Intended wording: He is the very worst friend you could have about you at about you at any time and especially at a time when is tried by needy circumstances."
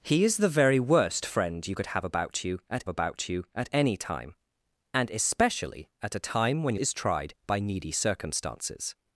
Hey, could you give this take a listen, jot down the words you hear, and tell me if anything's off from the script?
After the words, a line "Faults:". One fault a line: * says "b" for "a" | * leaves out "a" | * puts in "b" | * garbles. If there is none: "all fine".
He is the very worst friend you could have about you at about you at any time and especially at a time when is tried by needy circumstances."
Faults:
all fine